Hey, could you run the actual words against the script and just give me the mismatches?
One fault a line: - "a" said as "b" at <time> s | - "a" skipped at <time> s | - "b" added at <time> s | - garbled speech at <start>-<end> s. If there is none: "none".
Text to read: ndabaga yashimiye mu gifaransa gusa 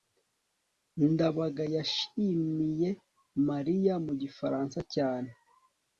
- "mariya" added at 3.5 s
- "gusa" said as "cyane" at 4.9 s